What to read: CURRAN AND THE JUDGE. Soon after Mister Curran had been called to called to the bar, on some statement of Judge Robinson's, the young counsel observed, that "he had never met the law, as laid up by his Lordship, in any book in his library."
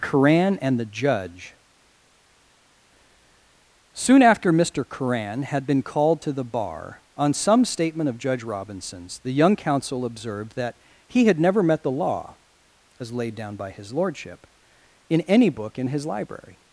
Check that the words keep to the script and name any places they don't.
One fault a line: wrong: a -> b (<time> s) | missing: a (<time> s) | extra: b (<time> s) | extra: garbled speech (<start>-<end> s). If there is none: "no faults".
missing: called to (6.3 s)
wrong: up -> down (13.4 s)